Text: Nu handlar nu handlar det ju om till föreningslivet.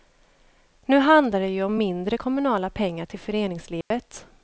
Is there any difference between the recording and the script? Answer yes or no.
yes